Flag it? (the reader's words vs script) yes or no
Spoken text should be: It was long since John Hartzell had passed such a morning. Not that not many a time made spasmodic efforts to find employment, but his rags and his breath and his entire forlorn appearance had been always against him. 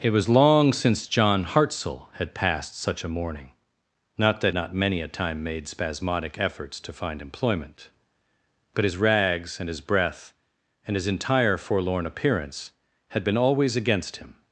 no